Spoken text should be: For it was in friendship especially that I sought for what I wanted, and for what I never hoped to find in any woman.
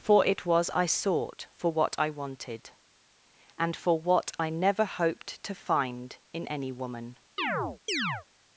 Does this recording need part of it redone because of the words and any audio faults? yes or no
yes